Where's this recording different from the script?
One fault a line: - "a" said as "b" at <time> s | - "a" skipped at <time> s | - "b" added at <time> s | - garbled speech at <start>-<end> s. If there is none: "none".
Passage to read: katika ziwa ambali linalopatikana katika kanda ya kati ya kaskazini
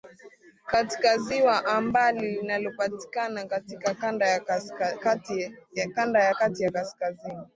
none